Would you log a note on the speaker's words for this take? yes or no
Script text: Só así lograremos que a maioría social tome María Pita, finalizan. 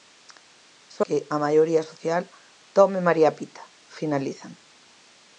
yes